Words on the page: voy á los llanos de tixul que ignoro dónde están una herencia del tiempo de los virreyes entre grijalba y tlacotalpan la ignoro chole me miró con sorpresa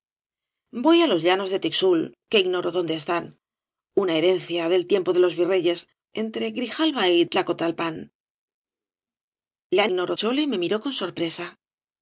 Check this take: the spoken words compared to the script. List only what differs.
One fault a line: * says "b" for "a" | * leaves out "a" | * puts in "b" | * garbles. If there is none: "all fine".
all fine